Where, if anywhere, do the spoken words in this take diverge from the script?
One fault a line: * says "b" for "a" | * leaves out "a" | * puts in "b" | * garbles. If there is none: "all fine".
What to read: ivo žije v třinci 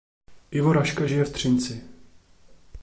* puts in "raška"